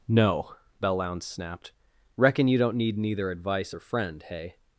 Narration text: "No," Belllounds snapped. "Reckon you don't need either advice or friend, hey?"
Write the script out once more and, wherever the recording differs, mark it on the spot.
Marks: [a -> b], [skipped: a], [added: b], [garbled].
"No," Belllounds snapped. "Reckon you don't need [either -> neither] advice or friend, hey?"